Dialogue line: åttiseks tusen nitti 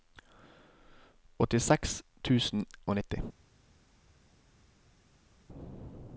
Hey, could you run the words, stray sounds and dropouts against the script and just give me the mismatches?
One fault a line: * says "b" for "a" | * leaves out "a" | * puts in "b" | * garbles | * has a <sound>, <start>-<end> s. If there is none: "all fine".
* puts in "og"